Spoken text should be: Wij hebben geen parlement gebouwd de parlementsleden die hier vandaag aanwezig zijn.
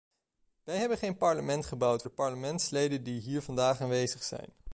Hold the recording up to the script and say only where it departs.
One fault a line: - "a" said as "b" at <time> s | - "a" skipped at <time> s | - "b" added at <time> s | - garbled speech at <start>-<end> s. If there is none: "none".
none